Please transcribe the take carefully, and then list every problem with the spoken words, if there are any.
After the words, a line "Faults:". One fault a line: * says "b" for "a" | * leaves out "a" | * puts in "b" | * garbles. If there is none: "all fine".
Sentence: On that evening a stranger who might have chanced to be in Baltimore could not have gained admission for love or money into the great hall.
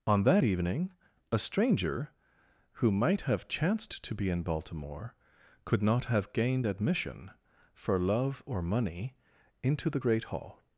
On that evening a stranger who might have chanced to be in Baltimore could not have gained admission for love or money into the great hall.
Faults:
all fine